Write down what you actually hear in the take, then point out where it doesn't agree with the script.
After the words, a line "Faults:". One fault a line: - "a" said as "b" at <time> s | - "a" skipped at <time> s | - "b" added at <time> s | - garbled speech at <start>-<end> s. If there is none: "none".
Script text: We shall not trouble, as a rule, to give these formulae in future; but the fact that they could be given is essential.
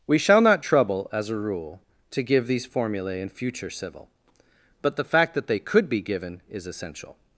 We shall not trouble, as a rule, to give these formulae in future; civil but the fact that they could be given is essential.
Faults:
- "civil" added at 3.7 s